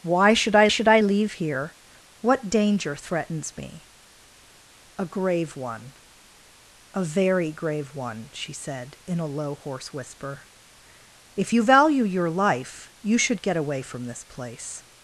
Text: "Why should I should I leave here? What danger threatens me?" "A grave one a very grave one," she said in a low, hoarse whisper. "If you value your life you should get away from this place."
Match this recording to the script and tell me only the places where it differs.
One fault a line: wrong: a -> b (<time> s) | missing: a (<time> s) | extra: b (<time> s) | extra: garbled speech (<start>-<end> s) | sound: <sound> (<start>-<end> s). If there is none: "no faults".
no faults